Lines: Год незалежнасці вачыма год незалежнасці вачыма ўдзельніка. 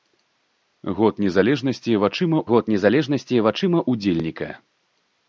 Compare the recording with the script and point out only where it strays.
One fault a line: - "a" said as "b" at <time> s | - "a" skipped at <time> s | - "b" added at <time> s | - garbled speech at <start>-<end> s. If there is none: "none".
none